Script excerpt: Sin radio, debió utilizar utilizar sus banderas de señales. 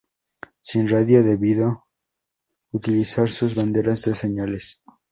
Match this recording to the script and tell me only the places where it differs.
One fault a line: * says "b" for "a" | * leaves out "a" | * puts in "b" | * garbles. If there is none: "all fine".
* leaves out "utilizar"